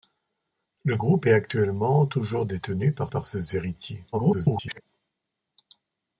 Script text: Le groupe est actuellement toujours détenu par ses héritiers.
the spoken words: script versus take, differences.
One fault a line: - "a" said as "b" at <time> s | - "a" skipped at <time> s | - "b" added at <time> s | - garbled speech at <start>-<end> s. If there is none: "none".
- "par" added at 3.1 s
- garbled speech at 4.1-4.8 s